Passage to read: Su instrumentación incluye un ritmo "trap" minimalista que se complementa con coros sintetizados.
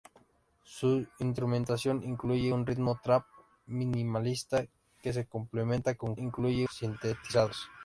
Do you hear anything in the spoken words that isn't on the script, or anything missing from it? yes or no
yes